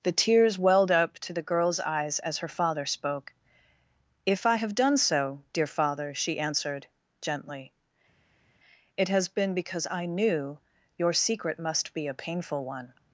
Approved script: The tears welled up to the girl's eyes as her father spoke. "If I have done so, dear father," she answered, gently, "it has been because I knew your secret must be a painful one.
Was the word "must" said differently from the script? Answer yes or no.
no